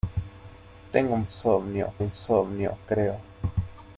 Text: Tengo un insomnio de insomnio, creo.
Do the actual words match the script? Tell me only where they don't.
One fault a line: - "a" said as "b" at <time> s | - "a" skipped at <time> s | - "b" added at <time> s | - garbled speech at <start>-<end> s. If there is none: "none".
none